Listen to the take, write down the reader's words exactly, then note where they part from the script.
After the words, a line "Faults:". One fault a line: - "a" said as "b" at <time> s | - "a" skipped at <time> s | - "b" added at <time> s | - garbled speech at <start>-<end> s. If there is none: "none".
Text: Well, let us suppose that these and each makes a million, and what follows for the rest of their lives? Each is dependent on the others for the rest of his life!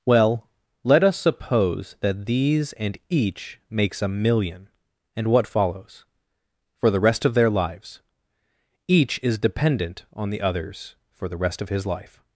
Well, let us suppose that these and each makes a million, and what follows for the rest of their lives? Each is dependent on the others for the rest of his life!
Faults:
none